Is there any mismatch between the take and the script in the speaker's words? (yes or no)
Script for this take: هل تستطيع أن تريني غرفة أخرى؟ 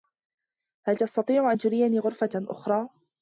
no